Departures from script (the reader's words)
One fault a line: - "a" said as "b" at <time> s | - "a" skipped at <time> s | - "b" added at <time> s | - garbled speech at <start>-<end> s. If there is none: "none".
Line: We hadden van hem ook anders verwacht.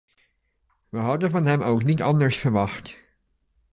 - "niet" added at 1.8 s